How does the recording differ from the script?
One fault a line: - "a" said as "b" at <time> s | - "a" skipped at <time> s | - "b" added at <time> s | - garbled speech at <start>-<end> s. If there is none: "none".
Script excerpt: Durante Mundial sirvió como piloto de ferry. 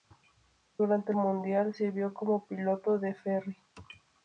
none